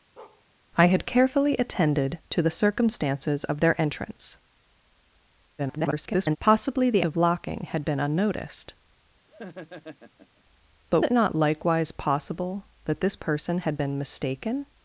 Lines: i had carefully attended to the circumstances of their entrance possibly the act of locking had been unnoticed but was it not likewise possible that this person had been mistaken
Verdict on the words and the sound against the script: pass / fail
fail